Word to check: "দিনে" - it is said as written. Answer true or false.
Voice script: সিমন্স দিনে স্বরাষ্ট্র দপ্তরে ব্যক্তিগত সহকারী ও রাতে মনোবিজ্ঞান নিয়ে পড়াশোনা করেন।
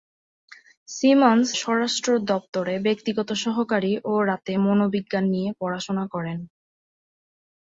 false